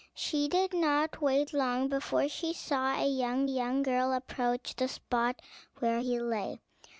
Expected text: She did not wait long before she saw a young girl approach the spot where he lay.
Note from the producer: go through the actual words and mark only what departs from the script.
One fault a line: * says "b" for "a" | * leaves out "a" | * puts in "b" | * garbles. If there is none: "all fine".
* puts in "young"